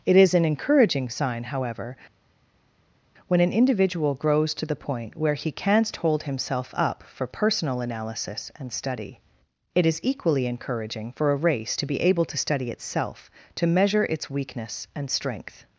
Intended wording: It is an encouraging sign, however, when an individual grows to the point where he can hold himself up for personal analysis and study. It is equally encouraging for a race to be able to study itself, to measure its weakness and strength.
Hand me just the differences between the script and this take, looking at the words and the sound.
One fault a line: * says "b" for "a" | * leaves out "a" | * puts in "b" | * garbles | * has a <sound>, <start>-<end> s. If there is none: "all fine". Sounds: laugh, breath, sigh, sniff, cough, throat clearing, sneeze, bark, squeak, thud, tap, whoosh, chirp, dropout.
* says "canst" for "can"